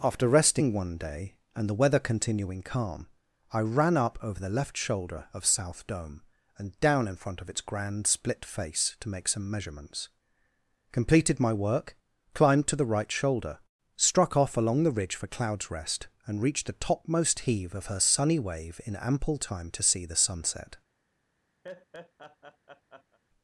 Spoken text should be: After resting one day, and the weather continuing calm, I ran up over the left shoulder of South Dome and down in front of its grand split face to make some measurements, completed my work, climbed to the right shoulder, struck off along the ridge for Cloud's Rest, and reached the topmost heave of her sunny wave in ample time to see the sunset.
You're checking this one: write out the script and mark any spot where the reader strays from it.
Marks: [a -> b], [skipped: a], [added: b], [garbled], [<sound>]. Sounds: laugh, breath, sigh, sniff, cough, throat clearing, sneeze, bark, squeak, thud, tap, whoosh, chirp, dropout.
After resting one day, and the weather continuing calm, I ran up over the left shoulder of South Dome and down in front of its grand split face to make some measurements, completed my work, climbed to the right shoulder, struck off along the ridge for Cloud's Rest, and reached the topmost heave of her sunny wave in ample time to see the sunset. [laugh]